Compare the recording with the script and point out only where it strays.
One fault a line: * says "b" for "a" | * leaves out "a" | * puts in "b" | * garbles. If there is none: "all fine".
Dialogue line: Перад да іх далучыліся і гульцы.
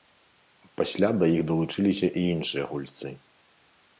* says "Пасля" for "Перад"
* puts in "іншыя"